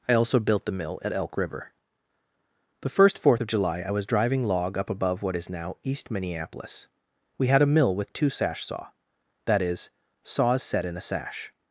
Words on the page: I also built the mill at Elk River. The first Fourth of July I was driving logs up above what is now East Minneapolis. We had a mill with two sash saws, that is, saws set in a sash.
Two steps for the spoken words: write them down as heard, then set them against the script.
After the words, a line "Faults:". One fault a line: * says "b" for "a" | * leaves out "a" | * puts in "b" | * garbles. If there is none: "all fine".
I also built the mill at Elk River. The first Fourth of July I was driving log up above what is now East Minneapolis. We had a mill with two sash saw, that is, saws set in a sash.
Faults:
* says "log" for "logs"
* says "saw" for "saws"